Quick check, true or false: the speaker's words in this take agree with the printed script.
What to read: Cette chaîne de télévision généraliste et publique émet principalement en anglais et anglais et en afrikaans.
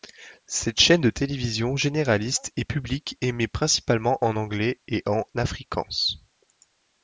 false